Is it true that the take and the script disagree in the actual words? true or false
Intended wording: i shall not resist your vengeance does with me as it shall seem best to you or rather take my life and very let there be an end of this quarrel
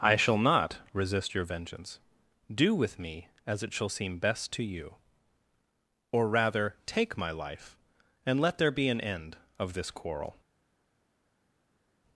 true